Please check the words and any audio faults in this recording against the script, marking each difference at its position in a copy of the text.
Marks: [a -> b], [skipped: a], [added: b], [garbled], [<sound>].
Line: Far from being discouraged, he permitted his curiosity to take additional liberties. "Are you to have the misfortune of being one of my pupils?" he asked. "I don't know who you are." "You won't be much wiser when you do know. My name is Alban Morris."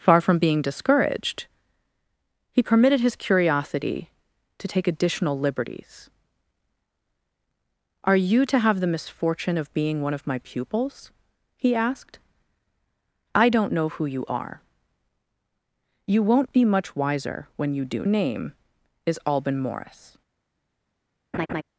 Far from being discouraged, he permitted his curiosity to take additional liberties. "Are you to have the misfortune of being one of my pupils?" he asked. "I don't know who you are." "You won't be much wiser when you do [skipped: know. My] name is Alban Morris." [laugh]